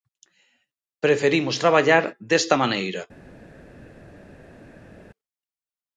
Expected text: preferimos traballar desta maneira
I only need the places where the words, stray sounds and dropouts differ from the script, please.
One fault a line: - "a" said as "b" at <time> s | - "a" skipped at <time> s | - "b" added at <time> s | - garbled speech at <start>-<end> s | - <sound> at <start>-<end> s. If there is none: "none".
none